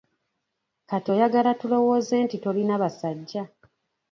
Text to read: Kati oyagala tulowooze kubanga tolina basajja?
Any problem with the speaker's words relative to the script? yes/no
yes